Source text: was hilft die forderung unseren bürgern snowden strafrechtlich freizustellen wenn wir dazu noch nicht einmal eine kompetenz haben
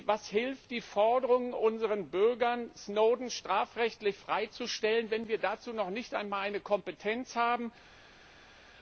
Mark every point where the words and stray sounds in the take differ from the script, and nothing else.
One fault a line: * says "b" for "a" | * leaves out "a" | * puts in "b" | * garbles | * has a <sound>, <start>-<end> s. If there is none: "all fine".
all fine